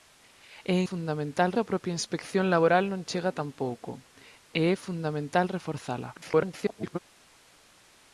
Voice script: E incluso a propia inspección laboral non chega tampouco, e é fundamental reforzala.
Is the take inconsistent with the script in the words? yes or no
yes